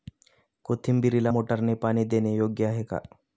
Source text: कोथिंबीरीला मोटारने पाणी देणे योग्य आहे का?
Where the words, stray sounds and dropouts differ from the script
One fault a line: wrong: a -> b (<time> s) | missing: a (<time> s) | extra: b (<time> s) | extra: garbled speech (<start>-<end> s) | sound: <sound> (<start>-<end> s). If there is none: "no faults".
no faults